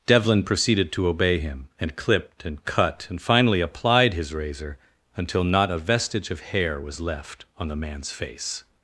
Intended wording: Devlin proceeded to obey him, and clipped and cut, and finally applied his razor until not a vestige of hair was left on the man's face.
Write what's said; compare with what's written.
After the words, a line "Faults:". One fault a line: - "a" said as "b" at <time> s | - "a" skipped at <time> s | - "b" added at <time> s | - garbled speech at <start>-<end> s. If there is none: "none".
Devlin proceeded to obey him, and clipped and cut, and finally applied his razor until not a vestige of hair was left on the man's face.
Faults:
none